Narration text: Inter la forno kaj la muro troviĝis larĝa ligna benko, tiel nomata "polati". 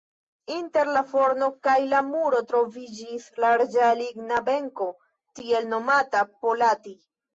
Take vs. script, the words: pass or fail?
pass